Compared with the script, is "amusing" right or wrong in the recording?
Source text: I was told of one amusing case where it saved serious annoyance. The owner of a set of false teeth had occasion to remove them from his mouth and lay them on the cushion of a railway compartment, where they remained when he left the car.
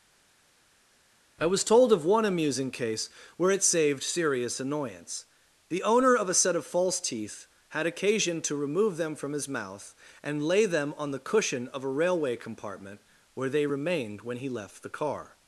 right